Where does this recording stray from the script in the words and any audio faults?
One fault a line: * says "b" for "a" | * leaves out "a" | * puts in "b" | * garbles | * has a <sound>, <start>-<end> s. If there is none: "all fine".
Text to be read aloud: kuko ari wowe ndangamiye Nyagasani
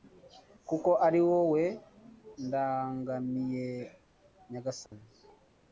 * has a dropout, 4.9-4.9 s